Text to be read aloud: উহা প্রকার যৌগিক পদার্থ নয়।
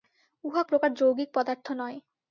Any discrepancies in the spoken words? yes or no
no